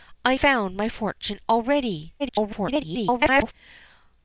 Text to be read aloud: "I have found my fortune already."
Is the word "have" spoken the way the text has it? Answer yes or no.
no